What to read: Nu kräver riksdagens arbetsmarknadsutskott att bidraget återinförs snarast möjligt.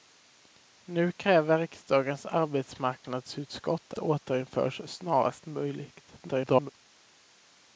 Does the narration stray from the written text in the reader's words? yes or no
yes